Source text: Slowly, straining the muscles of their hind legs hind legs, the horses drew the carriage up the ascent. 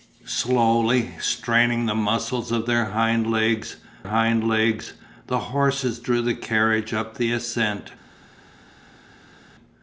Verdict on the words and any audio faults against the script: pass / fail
pass